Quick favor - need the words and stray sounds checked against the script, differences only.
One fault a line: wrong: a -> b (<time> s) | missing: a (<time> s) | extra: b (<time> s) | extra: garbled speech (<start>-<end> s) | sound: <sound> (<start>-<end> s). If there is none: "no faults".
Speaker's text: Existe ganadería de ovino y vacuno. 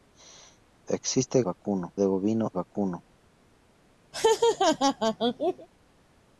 wrong: ganadería -> vacuno (1.4 s)
missing: y (2.5 s)
sound: laugh (4.1-5.7 s)